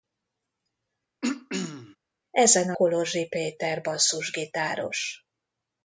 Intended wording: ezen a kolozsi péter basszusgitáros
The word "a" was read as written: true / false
true